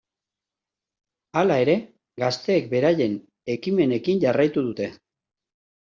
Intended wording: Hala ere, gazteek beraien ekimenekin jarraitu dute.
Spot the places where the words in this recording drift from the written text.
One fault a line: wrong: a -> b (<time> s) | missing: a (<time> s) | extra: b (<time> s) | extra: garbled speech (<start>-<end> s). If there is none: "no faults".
no faults